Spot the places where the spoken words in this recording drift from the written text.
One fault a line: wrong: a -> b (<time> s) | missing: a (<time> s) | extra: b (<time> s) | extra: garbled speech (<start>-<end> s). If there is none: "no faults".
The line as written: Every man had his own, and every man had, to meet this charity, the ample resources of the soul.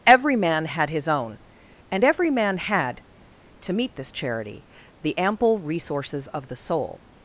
no faults